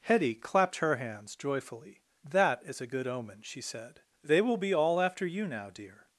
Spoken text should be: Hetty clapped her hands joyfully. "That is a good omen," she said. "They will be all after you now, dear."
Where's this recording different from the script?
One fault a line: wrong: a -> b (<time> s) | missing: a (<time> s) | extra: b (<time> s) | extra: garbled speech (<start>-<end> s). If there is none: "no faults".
no faults